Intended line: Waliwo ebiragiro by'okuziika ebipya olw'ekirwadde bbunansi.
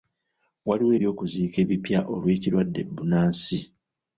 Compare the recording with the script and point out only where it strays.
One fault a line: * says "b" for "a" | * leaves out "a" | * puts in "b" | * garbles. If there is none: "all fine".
* leaves out "ebiragiro"